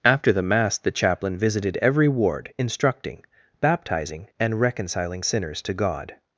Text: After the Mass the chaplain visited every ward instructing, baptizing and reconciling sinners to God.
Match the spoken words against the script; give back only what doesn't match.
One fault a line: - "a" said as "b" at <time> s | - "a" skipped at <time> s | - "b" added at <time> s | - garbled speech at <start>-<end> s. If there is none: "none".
none